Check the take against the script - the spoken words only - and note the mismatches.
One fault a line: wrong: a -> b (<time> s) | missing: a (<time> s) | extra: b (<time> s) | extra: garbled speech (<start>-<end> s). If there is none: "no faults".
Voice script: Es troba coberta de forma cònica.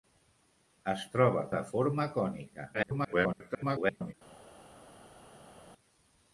missing: coberta (1.4 s)
extra: garbled speech (2.7-4.1 s)